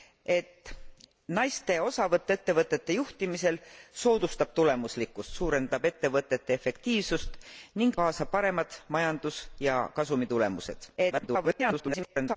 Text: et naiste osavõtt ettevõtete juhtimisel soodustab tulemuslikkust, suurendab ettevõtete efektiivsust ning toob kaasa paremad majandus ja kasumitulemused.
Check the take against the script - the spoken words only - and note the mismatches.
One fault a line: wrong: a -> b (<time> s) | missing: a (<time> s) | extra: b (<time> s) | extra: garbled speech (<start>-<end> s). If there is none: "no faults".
missing: toob (8.0 s)
extra: garbled speech (11.0-12.4 s)